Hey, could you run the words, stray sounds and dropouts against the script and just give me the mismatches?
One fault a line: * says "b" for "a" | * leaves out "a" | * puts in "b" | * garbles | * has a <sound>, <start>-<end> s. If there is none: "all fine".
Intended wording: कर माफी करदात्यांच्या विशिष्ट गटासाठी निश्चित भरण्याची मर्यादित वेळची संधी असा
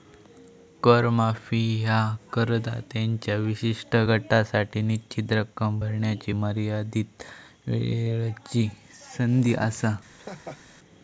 * puts in "ह्या"
* puts in "रक्कम"
* has a laugh, 10.1-10.6 s